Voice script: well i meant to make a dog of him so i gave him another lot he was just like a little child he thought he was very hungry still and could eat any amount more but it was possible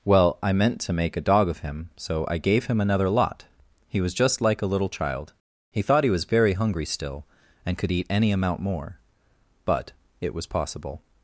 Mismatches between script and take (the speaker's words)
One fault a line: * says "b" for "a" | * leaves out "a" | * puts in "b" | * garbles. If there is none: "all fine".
all fine